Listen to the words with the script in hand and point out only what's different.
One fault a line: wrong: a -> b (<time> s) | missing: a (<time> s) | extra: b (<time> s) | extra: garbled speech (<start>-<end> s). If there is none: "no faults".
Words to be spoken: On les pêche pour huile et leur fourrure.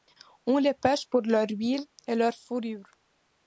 extra: leur (1.2 s)